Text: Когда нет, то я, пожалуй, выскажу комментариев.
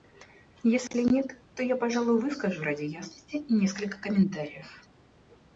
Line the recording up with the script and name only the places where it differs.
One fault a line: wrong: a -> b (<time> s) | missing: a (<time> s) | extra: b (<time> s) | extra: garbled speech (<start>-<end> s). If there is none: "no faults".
wrong: Когда -> Если (0.6 s)
extra: ради ясности несколько (2.6 s)